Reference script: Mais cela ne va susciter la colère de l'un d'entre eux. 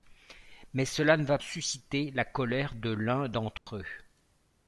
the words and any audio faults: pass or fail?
fail